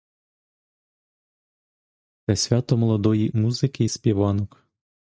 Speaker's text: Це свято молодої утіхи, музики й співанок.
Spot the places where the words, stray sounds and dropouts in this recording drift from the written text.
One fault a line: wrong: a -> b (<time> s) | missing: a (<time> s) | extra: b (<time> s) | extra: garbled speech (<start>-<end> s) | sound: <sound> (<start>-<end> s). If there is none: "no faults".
missing: утіхи (3.3 s)